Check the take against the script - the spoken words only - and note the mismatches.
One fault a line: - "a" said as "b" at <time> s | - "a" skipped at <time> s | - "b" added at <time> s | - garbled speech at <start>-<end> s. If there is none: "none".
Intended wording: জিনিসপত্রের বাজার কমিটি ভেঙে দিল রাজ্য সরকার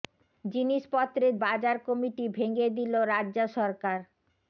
none